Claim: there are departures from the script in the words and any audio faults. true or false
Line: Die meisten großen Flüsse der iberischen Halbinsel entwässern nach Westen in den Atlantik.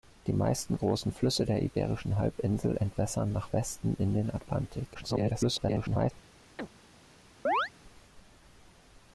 true